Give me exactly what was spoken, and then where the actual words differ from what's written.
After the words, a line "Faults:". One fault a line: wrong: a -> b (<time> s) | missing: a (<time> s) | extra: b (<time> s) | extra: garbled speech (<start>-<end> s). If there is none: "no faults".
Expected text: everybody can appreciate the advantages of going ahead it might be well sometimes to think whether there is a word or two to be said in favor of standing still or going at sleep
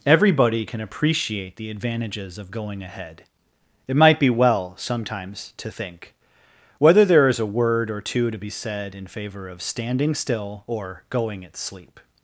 everybody can appreciate the advantages of going ahead it might be well sometimes to think whether there is a word or two to be said in favor of standing still or going at sleep
Faults:
no faults